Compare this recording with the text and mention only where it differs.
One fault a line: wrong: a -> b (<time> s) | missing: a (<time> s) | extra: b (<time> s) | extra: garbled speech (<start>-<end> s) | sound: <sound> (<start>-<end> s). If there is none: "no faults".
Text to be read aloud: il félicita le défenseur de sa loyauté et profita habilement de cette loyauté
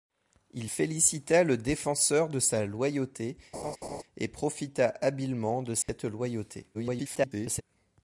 sound: laugh (3.5-4.0 s)
sound: dropout (5.8-5.9 s)
extra: garbled speech (6.7-7.6 s)